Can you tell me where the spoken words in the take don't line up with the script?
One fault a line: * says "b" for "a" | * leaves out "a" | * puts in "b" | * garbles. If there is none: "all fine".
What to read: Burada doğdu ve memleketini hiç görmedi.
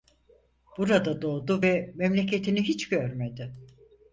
all fine